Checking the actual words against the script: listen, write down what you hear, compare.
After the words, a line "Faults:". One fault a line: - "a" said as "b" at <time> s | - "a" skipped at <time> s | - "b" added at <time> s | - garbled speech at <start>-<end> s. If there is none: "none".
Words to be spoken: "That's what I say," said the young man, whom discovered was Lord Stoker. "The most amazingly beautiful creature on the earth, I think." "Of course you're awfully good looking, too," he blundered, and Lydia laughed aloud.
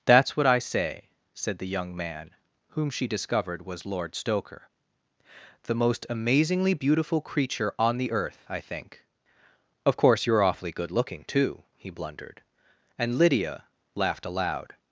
"That's what I say," said the young man, whom she discovered was Lord Stoker. "The most amazingly beautiful creature on the earth, I think." "Of course you're awfully good looking, too," he blundered, and Lydia laughed aloud.
Faults:
- "she" added at 2.9 s